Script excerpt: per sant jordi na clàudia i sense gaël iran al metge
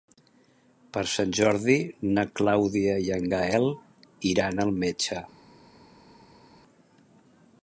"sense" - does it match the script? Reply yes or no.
no